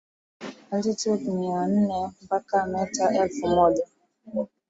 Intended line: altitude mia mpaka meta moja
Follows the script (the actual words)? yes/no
no